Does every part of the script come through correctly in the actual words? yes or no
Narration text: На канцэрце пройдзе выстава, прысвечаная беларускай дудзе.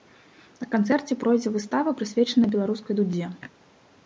yes